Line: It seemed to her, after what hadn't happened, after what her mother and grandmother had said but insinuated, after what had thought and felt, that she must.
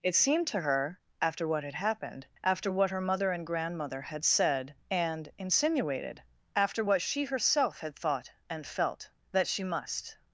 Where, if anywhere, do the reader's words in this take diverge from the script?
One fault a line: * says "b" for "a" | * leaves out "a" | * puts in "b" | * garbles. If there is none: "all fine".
* says "had" for "hadn't"
* says "and" for "but"
* puts in "she herself"